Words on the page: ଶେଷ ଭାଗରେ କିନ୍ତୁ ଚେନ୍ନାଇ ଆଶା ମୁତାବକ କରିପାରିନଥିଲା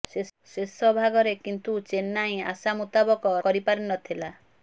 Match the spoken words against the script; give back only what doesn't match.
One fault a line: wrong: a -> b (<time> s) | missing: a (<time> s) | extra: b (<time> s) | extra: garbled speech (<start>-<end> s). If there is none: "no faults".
no faults